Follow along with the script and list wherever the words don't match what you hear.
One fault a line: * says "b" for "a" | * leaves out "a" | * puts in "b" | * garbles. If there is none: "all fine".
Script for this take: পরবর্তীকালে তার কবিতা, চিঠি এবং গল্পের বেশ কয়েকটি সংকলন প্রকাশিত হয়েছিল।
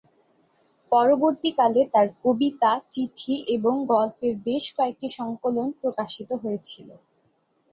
all fine